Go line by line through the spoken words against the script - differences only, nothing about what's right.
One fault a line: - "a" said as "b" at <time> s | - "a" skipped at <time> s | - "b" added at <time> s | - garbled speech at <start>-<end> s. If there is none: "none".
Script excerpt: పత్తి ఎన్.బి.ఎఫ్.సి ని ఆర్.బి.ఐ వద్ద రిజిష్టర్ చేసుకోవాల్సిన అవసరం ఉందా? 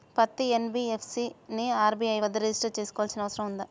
none